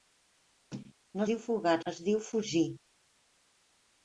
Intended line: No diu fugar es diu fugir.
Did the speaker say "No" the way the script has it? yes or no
yes